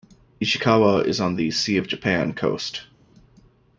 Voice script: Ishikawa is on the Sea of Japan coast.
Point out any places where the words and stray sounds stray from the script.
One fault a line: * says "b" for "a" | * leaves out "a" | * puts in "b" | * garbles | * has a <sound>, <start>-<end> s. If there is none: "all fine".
all fine